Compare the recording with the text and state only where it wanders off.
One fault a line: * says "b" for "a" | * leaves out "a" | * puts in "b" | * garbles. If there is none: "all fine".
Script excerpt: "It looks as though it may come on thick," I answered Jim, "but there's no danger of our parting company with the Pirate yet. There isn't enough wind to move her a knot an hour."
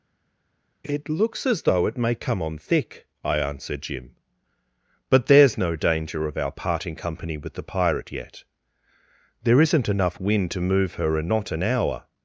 all fine